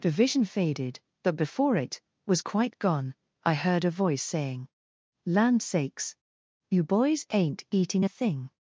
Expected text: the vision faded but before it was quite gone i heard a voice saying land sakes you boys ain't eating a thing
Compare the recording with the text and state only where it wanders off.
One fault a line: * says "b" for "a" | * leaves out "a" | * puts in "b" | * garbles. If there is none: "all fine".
all fine